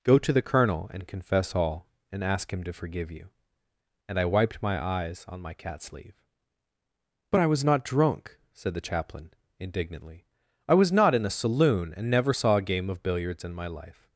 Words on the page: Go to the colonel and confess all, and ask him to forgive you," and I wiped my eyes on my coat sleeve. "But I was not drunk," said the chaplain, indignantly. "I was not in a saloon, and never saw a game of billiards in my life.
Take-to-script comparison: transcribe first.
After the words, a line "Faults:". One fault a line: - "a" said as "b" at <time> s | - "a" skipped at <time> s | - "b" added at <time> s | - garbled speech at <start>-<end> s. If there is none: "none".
Go to the colonel and confess all, and ask him to forgive you," and I wiped my eyes on my cat sleeve. "But I was not drunk," said the chaplain, indignantly. "I was not in a saloon, and never saw a game of billiards in my life.
Faults:
- "coat" said as "cat" at 5.5 s